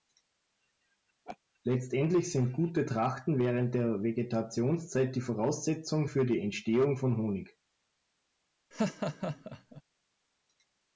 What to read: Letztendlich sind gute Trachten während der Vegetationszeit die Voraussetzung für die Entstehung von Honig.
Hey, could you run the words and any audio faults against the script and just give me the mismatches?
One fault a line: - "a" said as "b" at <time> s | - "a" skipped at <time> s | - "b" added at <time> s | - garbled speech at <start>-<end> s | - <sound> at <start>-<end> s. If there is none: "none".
- laugh at 1.3-1.4 s
- laugh at 8.7-9.8 s